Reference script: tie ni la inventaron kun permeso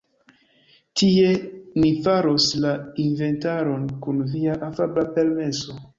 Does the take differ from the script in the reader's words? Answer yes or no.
yes